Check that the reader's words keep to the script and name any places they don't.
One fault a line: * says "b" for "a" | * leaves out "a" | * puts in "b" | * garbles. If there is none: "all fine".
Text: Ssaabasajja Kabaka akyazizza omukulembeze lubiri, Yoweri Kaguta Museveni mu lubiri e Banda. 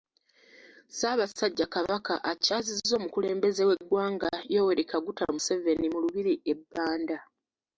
* says "w'eggwanga" for "lubiri"